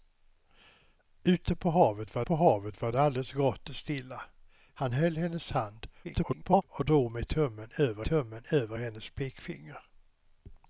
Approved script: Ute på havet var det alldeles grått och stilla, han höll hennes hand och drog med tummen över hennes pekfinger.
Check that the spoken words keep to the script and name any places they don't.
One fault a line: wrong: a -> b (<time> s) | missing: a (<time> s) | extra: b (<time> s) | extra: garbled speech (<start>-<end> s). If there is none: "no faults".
extra: på havet var (2.2 s)
extra: garbled speech (6.0-6.6 s)
extra: tummen över (8.0 s)